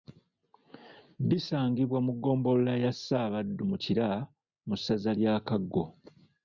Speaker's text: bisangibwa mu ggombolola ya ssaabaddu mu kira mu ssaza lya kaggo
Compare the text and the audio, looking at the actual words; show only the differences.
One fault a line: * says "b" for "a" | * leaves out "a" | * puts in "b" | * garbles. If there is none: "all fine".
all fine